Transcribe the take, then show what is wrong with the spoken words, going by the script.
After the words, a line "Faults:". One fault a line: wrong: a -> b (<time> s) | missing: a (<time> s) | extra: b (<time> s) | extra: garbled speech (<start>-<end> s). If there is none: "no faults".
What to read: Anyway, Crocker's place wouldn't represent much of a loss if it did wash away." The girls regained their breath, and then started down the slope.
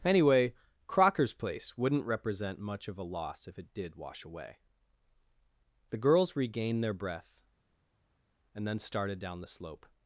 Anyway, Crocker's place wouldn't represent much of a loss if it did wash away." The girls regained their breath, and then started down the slope.
Faults:
no faults